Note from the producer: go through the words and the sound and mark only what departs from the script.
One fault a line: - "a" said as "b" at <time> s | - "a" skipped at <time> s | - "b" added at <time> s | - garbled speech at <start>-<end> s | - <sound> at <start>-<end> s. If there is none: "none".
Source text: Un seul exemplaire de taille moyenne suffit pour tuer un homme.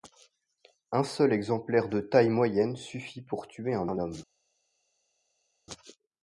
- "un" added at 3.8 s